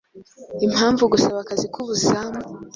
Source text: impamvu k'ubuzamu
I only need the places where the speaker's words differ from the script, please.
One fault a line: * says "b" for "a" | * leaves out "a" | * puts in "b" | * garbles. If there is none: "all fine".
* puts in "gusaba akazi"